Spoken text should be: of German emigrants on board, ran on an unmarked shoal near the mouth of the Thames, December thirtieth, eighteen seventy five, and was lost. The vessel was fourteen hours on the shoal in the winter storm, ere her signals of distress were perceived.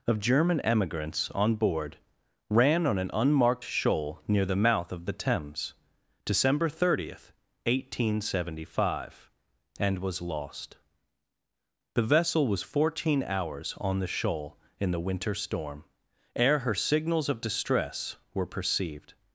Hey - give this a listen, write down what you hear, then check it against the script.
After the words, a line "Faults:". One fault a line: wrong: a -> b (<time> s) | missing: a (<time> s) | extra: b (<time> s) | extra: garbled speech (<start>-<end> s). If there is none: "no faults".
of German emigrants on board, ran on an unmarked shoal near the mouth of the Thames, December thirtieth, eighteen seventy five, and was lost. The vessel was fourteen hours on the shoal in the winter storm, ere her signals of distress were perceived.
Faults:
no faults